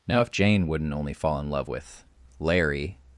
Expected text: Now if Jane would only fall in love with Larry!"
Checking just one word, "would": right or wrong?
wrong